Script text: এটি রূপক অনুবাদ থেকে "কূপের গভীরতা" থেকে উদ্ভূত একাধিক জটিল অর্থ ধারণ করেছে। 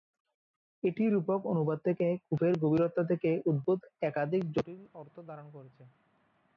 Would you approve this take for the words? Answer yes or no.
yes